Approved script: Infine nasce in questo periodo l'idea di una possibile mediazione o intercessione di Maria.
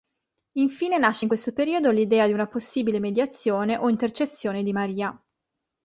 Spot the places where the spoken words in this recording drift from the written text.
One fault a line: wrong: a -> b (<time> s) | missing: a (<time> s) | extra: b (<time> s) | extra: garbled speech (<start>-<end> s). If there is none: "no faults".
no faults